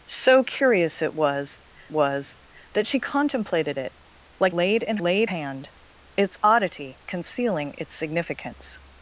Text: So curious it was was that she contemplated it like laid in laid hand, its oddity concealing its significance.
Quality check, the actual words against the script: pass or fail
pass